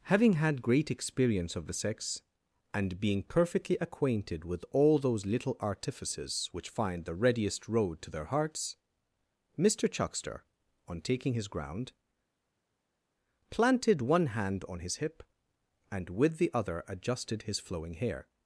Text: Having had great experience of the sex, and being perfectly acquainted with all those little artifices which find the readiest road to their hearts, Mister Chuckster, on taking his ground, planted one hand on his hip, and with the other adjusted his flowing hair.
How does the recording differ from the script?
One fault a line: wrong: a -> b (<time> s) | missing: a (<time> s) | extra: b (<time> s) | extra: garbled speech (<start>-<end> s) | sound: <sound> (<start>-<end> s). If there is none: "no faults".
no faults